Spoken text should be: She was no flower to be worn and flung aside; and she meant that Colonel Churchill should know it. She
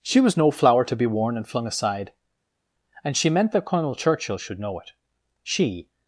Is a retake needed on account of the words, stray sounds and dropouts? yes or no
no